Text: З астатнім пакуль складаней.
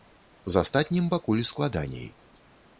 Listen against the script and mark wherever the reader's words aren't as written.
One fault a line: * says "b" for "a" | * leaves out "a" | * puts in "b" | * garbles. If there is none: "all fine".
all fine